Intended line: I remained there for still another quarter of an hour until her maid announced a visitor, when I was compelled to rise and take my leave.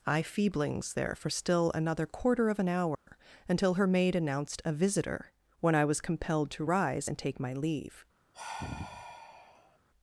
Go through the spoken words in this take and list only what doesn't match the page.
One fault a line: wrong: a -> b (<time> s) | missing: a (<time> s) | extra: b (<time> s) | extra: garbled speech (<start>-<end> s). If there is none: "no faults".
wrong: remained -> feeblings (0.2 s)